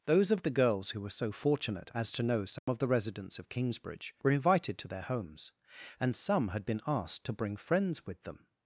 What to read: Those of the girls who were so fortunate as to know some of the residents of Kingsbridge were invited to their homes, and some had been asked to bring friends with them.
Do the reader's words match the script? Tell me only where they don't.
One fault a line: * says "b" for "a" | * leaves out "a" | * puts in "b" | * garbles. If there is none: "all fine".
all fine